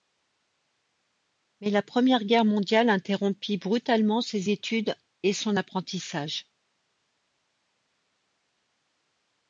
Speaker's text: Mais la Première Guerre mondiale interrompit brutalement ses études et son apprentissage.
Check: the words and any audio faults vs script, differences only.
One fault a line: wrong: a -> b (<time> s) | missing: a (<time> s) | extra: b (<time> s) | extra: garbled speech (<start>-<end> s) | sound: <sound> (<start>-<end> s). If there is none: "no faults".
no faults